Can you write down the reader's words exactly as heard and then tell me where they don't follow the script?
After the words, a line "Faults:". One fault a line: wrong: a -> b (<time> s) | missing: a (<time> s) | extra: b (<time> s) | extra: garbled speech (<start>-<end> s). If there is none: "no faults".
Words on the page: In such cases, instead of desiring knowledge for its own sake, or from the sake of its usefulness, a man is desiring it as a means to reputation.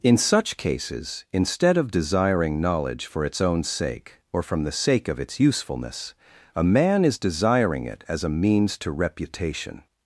In such cases, instead of desiring knowledge for its own sake, or from the sake of its usefulness, a man is desiring it as a means to reputation.
Faults:
no faults